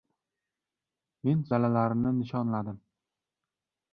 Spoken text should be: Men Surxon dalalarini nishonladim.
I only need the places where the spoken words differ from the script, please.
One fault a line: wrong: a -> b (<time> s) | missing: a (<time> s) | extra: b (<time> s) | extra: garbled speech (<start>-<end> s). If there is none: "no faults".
missing: Surxon (1.4 s)